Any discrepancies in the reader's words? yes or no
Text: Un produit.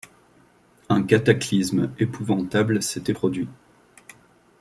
yes